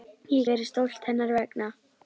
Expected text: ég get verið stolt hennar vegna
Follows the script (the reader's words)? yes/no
no